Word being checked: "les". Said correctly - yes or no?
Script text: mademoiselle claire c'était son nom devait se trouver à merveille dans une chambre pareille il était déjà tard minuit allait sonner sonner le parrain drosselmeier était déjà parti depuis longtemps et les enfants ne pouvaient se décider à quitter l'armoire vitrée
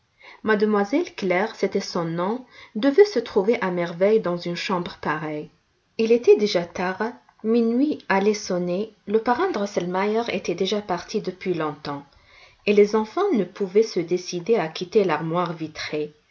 yes